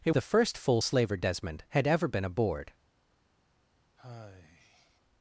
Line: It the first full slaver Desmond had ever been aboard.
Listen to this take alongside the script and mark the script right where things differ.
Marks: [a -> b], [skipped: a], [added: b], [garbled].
It the first full slaver Desmond had ever been aboard.